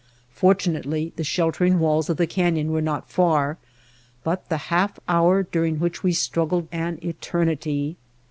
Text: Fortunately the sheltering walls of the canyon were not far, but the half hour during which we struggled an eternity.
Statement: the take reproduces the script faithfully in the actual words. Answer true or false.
true